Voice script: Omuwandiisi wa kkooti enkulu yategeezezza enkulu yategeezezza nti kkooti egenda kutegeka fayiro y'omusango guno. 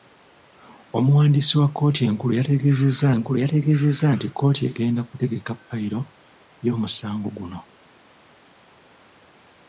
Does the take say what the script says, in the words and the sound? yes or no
yes